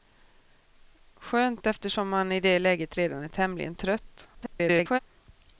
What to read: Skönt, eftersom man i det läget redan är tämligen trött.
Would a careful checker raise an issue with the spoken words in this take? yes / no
yes